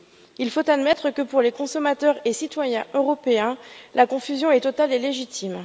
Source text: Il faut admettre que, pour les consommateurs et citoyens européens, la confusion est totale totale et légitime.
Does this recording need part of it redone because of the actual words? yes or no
yes